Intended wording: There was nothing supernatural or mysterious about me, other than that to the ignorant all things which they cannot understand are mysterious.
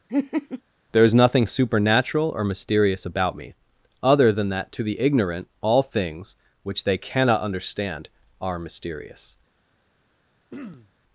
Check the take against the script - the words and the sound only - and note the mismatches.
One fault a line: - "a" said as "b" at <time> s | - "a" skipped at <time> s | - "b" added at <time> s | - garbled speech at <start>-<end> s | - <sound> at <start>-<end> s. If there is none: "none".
- laugh at 0.1-0.6 s
- "was" said as "is" at 1.0 s
- throat clearing at 10.5-10.9 s